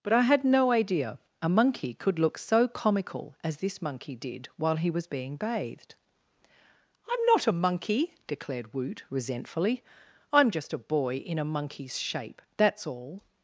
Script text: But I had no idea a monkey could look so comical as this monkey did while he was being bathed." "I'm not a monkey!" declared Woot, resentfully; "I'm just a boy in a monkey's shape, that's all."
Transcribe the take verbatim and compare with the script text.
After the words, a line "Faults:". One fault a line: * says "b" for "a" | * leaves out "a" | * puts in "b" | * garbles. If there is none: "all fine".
But I had no idea a monkey could look so comical as this monkey did while he was being bathed." "I'm not a monkey!" declared Woot, resentfully; "I'm just a boy in a monkey's shape, that's all."
Faults:
all fine